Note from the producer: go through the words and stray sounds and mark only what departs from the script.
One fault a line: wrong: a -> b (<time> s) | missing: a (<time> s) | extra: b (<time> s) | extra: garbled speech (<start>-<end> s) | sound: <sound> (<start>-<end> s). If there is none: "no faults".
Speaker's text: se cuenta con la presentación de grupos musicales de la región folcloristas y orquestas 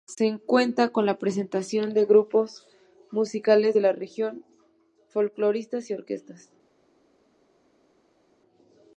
no faults